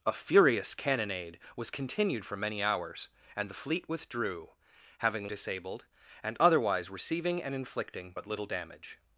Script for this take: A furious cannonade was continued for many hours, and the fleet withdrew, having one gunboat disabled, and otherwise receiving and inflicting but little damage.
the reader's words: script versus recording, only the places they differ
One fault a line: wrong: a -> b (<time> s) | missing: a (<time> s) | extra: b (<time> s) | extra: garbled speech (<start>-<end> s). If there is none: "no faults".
missing: one gunboat (5.3 s)